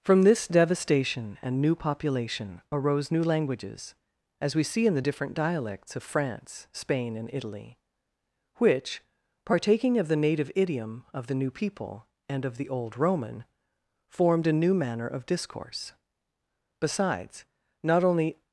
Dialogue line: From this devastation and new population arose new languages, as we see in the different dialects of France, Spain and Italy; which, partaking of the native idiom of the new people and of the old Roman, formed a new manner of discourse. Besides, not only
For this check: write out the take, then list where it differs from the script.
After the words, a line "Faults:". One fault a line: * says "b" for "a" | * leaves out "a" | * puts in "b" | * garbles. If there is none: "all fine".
From this devastation and new population arose new languages, as we see in the different dialects of France, Spain and Italy; which, partaking of the native idiom of the new people and of the old Roman, formed a new manner of discourse. Besides, not only
Faults:
all fine